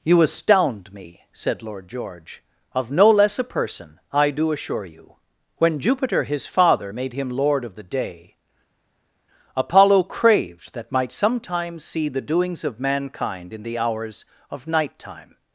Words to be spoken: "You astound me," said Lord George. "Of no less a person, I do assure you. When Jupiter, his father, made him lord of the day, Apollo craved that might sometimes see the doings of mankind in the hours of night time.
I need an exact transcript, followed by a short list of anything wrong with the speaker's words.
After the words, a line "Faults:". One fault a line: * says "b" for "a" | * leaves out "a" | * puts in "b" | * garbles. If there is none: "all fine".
"You astound me," said Lord George. "Of no less a person, I do assure you. When Jupiter, his father, made him lord of the day, Apollo craved that might sometimes see the doings of mankind in the hours of night time.
Faults:
all fine